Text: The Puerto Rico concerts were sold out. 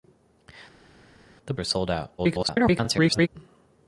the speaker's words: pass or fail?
fail